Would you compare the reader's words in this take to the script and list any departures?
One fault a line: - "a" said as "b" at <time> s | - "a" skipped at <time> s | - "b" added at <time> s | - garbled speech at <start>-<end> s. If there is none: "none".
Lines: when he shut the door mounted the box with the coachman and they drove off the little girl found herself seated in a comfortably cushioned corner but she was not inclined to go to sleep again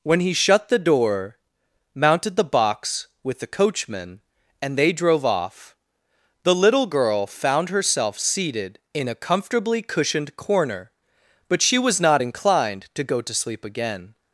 none